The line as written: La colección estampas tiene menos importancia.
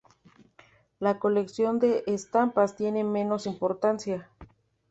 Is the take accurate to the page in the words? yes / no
no